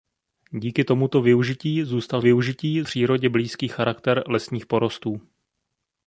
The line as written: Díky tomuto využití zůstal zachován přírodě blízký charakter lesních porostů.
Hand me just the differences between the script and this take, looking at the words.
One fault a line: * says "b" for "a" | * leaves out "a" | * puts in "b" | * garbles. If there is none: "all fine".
* says "využití" for "zachován"